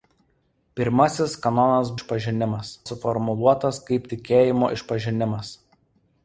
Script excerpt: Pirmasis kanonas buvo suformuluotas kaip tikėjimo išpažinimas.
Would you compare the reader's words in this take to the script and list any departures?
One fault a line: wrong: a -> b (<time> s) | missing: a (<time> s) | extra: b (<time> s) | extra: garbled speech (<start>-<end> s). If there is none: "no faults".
wrong: buvo -> išpažinimas (2.0 s)